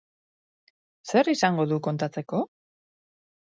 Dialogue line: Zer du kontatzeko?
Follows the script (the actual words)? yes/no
no